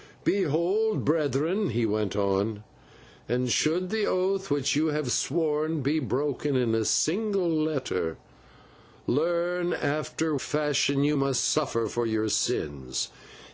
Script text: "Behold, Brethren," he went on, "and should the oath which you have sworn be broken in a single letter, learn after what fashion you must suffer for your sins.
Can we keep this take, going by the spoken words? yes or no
no